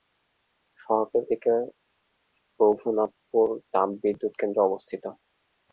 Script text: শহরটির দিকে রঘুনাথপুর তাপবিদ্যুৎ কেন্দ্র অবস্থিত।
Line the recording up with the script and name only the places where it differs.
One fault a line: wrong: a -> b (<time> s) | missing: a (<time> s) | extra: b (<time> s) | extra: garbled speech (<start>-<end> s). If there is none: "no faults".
no faults